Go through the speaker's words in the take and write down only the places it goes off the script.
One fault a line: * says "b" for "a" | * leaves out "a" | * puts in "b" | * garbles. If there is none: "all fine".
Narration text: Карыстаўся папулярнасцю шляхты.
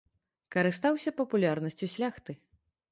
all fine